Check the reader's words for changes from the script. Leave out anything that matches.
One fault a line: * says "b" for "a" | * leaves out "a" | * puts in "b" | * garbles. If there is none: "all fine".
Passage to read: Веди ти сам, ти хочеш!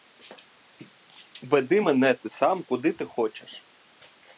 * puts in "мене"
* puts in "куди"